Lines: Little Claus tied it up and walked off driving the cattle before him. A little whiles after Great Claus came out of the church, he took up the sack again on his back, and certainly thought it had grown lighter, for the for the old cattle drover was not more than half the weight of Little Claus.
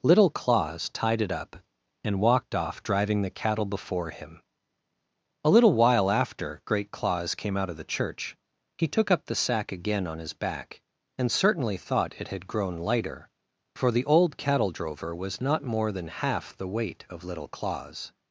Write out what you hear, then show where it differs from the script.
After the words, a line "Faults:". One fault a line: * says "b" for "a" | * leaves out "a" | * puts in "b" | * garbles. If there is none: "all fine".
Little Claus tied it up and walked off driving the cattle before him. A little while after Great Claus came out of the church, he took up the sack again on his back, and certainly thought it had grown lighter, for the old cattle drover was not more than half the weight of Little Claus.
Faults:
* says "while" for "whiles"
* leaves out "for the"